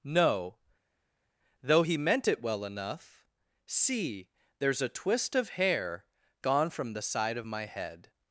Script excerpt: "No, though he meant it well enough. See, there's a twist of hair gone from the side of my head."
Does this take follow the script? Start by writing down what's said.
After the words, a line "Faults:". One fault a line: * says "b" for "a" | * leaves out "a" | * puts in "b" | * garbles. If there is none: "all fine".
"No, though he meant it well enough. See, there's a twist of hair gone from the side of my head."
Faults:
all fine